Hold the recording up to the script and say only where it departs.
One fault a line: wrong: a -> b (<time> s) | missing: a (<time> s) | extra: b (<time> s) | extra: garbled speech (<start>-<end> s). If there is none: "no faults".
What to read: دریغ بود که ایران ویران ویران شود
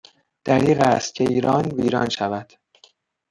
wrong: بود -> است (0.8 s)
missing: ویران (2.1 s)